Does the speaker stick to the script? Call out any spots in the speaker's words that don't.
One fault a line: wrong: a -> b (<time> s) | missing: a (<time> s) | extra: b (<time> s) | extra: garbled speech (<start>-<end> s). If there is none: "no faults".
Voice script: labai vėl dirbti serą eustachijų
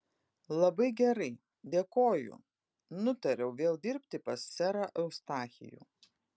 extra: gerai dėkoju nutariau (1.0 s)
extra: pas (4.3 s)